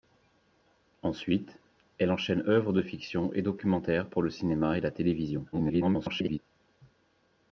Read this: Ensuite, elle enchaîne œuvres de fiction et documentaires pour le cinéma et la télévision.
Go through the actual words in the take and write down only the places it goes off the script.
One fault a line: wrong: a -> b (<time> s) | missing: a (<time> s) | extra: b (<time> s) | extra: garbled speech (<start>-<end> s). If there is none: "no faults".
extra: garbled speech (5.5-6.4 s)